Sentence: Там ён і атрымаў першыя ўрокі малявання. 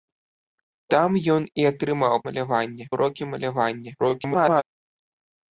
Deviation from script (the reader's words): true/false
true